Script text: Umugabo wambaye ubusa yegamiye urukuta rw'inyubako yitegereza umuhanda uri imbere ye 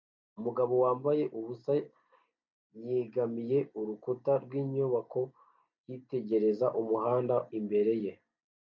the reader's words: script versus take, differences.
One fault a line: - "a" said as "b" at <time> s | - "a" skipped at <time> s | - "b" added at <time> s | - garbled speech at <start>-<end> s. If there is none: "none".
- "uri" skipped at 7.3 s